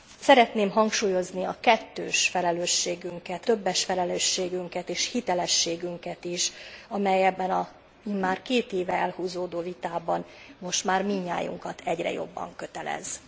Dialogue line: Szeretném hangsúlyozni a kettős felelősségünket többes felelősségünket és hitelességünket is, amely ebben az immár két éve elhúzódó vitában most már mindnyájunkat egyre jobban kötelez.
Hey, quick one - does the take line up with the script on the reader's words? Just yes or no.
yes